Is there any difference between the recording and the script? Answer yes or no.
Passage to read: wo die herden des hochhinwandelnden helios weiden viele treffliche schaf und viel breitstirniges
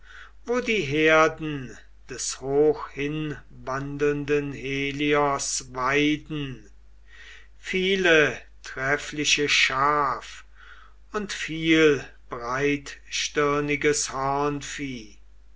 no